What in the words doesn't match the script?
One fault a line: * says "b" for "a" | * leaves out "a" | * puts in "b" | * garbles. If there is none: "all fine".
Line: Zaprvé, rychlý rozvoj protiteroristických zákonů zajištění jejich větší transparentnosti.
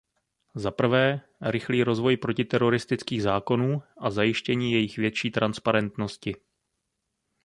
* puts in "a"